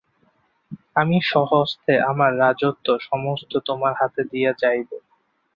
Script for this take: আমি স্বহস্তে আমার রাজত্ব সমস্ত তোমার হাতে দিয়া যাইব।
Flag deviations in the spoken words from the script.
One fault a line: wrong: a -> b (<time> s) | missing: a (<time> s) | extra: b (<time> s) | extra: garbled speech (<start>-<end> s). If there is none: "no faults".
no faults